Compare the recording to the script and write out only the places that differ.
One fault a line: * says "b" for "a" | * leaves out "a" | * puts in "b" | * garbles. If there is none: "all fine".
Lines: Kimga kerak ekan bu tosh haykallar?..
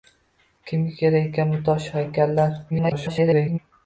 * garbles